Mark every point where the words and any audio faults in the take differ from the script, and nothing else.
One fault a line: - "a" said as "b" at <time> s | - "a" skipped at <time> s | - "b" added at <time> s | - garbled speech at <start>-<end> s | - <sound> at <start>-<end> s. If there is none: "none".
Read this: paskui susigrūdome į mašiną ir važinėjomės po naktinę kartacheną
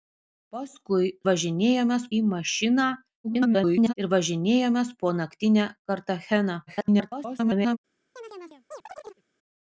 - "susigrūdome" said as "važinėjomės" at 1.3 s
- garbled speech at 3.2-3.9 s
- garbled speech at 6.7-7.8 s
- chirp at 8.2-9.2 s